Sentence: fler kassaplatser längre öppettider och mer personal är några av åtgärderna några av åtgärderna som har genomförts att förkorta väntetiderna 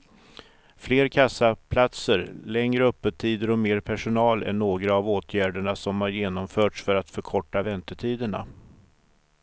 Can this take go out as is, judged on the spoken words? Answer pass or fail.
fail